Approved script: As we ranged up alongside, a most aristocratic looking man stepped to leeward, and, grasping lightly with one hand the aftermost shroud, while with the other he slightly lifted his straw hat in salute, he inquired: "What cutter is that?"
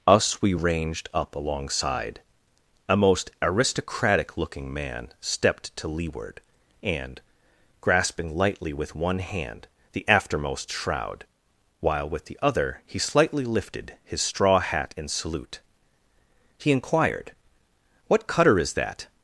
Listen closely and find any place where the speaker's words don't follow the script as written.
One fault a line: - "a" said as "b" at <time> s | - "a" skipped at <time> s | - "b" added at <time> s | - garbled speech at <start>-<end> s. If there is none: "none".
- "As" said as "Us" at 0.1 s